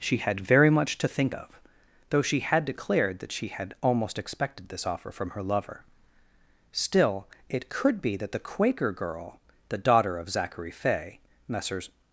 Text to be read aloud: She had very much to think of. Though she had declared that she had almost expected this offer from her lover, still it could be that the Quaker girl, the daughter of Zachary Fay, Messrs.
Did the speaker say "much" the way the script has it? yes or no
yes